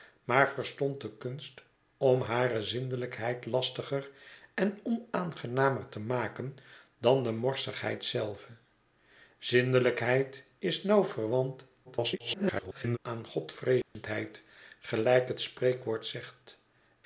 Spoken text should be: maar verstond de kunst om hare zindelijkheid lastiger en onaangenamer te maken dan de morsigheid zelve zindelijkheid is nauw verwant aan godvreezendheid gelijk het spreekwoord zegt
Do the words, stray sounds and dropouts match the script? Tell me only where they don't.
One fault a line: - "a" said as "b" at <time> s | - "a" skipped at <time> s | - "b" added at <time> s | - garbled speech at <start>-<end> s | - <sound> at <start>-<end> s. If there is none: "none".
- garbled speech at 11.8-13.0 s
- dropout at 13.8-14.0 s